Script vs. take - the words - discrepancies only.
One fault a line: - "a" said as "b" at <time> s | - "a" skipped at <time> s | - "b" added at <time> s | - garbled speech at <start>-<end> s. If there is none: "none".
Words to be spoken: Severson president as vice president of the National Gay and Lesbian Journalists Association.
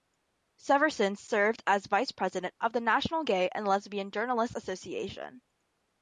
- "president" said as "served" at 1.1 s